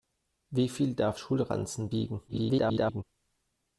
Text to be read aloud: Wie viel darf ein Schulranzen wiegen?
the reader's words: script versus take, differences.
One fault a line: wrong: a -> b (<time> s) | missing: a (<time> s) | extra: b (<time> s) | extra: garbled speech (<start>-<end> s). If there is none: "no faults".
missing: ein (1.2 s)
extra: garbled speech (2.3-3.0 s)